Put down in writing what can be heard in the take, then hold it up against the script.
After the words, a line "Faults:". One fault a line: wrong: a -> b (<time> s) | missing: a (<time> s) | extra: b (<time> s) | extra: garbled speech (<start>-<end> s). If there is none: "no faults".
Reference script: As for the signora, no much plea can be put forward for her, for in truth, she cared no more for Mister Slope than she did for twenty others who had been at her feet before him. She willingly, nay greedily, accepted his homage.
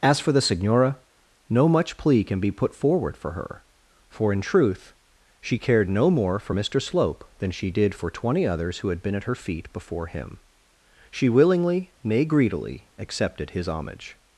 As for the signora, no much plea can be put forward for her, for in truth, she cared no more for Mister Slope than she did for twenty others who had been at her feet before him. She willingly, nay greedily, accepted his homage.
Faults:
no faults